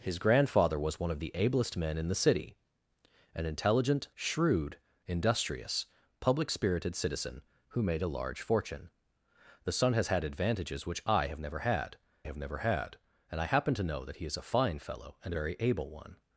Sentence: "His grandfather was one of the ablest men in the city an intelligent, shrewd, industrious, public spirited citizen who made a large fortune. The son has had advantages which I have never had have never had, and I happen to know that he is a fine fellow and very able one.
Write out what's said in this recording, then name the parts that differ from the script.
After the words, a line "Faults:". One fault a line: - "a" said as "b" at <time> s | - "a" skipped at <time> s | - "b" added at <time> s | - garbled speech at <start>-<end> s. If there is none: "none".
"His grandfather was one of the ablest men in the city an intelligent, shrewd, industrious, public spirited citizen who made a large fortune. The son has had advantages which I have never had have never had, and I happen to know that he is a fine fellow and very able one.
Faults:
none